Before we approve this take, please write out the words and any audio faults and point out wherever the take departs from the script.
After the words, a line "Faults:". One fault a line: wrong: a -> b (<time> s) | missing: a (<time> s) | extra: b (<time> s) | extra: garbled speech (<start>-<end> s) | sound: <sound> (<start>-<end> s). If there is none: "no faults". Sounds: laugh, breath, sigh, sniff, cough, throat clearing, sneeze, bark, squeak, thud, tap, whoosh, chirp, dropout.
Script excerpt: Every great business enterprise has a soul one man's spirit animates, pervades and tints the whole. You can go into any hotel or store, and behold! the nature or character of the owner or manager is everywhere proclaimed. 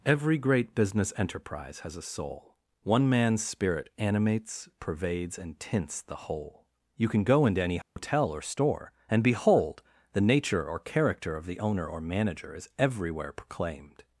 Every great business enterprise has a soul one man's spirit animates, pervades and tints the whole. You can go into any hotel or store, and behold! the nature or character of the owner or manager is everywhere proclaimed.
Faults:
sound: dropout (7.8-8.0 s)